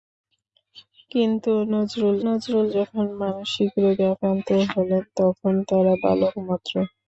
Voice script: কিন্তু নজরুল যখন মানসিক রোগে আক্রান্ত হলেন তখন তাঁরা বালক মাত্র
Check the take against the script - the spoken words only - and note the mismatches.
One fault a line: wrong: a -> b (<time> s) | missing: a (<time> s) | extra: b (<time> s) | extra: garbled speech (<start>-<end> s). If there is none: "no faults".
extra: নজরুল (2.2 s)